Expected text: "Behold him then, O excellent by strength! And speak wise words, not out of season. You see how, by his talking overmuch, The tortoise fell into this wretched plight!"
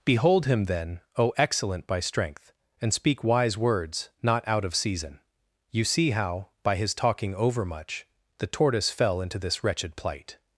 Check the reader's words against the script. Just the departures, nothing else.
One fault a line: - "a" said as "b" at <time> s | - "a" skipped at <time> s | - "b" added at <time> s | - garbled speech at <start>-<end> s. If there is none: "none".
none